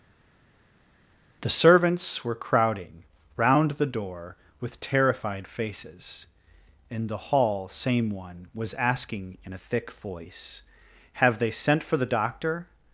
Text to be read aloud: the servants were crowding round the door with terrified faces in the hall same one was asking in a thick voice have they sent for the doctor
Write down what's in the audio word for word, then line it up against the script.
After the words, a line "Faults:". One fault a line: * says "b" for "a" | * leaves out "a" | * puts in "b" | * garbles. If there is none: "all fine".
the servants were crowding round the door with terrified faces in the hall same one was asking in a thick voice have they sent for the doctor
Faults:
all fine